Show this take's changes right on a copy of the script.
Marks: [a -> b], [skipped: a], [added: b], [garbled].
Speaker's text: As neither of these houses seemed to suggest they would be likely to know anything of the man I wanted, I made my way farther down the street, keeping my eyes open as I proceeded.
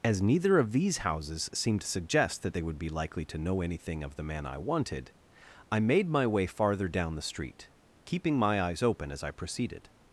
As neither of these houses seemed to suggest [added: that] they would be likely to know anything of the man I wanted, I made my way farther down the street, keeping my eyes open as I proceeded.